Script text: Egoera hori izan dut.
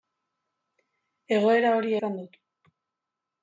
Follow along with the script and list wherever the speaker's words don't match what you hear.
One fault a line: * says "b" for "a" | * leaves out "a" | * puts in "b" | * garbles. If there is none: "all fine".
all fine